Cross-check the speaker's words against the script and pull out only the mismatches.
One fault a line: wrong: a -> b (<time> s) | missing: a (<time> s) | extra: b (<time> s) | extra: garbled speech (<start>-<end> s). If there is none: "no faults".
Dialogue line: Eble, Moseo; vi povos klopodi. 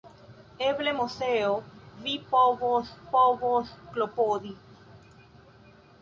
extra: povos (3.2 s)